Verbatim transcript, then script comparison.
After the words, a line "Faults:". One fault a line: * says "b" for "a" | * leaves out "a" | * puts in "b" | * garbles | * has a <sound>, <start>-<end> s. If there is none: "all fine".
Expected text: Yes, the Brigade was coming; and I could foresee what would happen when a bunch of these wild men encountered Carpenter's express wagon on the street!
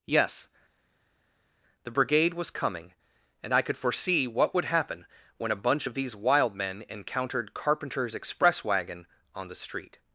Yes, the Brigade was coming; and I could foresee what would happen when a bunch of these wild men encountered Carpenter's express wagon on the street!
Faults:
all fine